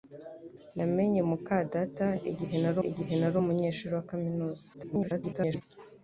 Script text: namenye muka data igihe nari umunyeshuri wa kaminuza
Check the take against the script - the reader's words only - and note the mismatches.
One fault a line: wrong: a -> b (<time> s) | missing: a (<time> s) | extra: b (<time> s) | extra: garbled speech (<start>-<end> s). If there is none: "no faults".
extra: igihe nari (2.9 s)
extra: garbled speech (4.7-5.6 s)